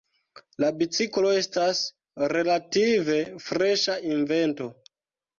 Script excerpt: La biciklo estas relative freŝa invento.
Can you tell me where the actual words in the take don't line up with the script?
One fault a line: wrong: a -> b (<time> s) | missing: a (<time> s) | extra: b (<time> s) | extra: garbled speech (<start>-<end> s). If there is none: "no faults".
no faults